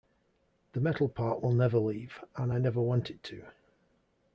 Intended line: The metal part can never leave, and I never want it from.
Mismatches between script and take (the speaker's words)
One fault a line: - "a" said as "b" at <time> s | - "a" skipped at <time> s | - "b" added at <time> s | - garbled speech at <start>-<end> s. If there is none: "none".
- "can" said as "will" at 1.4 s
- "from" said as "to" at 3.2 s